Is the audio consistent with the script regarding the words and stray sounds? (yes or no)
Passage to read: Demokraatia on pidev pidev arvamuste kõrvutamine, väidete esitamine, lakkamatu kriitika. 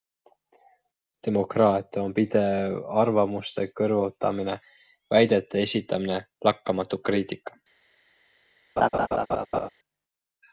no